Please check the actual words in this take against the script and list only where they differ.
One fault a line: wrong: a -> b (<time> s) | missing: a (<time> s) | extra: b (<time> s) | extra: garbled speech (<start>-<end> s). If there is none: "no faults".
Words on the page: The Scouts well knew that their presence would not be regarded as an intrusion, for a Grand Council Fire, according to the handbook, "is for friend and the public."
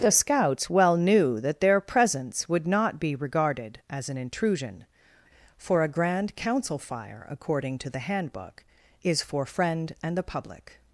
no faults